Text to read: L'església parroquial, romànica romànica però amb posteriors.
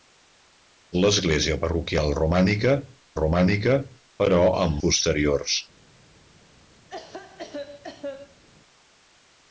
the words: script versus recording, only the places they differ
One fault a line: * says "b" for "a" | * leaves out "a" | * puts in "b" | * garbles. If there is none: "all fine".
all fine